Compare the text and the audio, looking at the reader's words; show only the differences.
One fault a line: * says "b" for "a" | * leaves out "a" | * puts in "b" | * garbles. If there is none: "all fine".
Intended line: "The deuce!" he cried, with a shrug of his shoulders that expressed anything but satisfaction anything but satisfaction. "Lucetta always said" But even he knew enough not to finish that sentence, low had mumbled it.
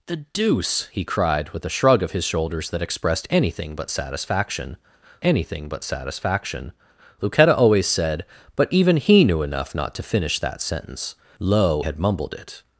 all fine